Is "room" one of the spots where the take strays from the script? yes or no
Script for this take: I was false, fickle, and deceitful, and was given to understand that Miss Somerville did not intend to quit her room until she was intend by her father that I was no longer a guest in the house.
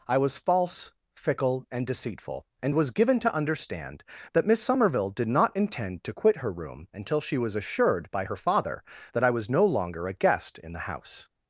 no